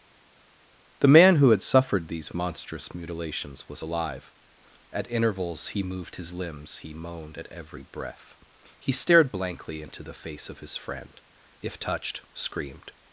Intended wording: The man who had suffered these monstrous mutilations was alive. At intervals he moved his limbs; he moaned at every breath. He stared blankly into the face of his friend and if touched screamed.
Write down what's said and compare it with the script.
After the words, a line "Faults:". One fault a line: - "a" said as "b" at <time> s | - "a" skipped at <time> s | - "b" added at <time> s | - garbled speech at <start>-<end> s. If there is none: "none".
The man who had suffered these monstrous mutilations was alive. At intervals he moved his limbs; he moaned at every breath. He stared blankly into the face of his friend if touched screamed.
Faults:
- "and" skipped at 11.2 s